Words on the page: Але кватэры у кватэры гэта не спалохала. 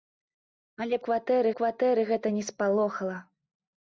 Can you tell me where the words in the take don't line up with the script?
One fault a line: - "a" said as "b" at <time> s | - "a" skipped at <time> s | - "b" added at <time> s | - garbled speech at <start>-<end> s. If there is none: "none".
none